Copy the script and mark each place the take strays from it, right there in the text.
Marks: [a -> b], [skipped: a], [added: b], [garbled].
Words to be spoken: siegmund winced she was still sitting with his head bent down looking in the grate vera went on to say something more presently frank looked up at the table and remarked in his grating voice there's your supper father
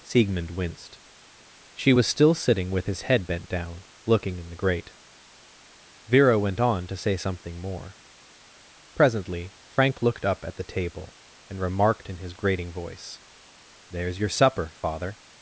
siegmund winced she was still sitting with his head bent down looking in the grate vera went on to say something more presently frank looked up at the table and remarked in his grating voice there's your supper father